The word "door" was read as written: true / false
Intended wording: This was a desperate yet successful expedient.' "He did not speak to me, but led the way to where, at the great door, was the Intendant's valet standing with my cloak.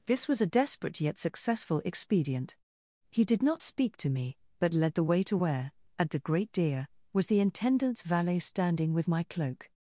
false